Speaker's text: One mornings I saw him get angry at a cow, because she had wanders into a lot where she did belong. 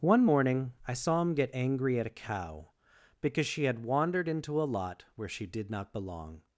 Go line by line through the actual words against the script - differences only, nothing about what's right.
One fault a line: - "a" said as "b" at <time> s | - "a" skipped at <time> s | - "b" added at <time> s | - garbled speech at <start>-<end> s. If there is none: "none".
- "mornings" said as "morning" at 0.2 s
- "wanders" said as "wandered" at 3.8 s
- "not" added at 5.7 s